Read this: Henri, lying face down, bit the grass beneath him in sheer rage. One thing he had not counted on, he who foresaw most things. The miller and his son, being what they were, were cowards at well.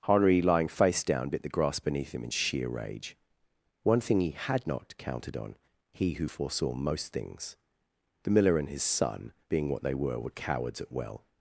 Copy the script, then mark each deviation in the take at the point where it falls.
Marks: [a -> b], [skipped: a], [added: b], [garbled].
Henri, lying face down, bit the grass beneath him in sheer rage. One thing he had not counted on, he who foresaw most things. The miller and his son, being what they were, were cowards at well.